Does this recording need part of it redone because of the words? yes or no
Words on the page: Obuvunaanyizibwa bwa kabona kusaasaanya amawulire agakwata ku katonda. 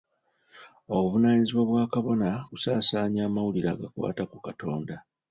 no